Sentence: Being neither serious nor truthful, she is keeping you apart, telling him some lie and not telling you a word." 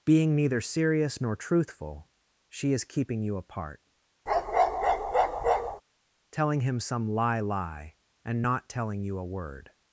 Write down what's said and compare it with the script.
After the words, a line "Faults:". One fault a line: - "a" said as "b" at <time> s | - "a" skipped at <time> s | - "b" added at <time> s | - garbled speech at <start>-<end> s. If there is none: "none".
Being neither serious nor truthful, she is keeping you apart, telling him some lie lie and not telling you a word."
Faults:
- "lie" added at 7.4 s